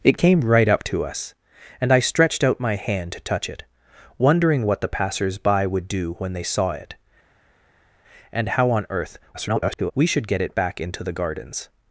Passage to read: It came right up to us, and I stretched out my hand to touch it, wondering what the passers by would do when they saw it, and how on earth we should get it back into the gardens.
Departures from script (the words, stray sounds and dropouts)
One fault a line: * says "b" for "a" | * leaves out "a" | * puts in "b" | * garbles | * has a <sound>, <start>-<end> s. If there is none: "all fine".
* garbles